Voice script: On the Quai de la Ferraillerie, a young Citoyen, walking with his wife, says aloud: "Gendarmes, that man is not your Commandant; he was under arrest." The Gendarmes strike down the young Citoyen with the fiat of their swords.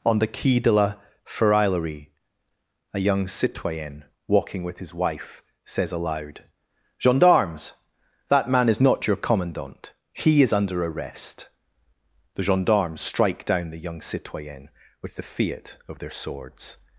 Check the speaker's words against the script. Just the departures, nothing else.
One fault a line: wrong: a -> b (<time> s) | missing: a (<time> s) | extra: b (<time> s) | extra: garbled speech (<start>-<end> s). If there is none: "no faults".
wrong: was -> is (10.4 s)